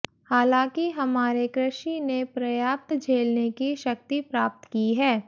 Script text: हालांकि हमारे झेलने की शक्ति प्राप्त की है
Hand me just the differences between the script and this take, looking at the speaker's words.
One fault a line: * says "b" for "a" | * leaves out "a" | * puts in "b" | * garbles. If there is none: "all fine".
* puts in "कृषि ने पर्याप्त"